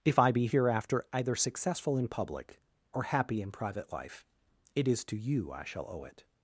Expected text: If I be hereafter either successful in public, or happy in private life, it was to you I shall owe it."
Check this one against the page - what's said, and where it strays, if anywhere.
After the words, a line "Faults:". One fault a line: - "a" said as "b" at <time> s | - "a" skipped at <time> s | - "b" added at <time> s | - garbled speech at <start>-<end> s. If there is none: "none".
If I be hereafter either successful in public, or happy in private life, it is to you I shall owe it."
Faults:
- "was" said as "is" at 4.9 s